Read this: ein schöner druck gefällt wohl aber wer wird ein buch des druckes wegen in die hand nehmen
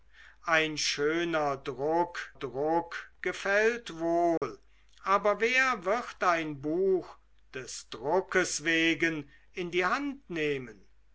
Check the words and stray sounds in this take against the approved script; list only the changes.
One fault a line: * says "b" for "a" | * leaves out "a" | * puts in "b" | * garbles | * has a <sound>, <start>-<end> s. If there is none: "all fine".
* puts in "druck"
* has a dropout, 4.4-4.4 s